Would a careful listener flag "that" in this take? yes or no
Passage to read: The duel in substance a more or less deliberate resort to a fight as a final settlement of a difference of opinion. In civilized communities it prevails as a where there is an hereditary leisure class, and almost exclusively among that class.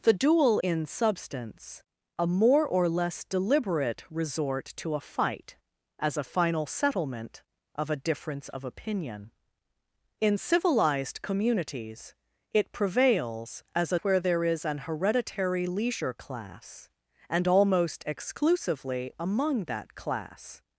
no